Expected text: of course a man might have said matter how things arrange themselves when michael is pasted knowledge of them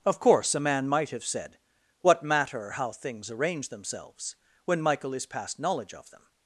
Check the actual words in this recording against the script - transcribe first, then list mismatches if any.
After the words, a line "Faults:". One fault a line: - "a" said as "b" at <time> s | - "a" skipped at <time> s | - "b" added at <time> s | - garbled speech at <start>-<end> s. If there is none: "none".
of course a man might have said what matter how things arrange themselves when michael is past knowledge of them
Faults:
- "what" added at 2.0 s
- "pasted" said as "past" at 5.3 s